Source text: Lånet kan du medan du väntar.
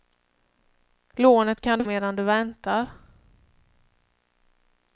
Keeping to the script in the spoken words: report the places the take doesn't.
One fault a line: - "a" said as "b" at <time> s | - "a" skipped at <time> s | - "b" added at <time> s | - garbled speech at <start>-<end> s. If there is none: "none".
none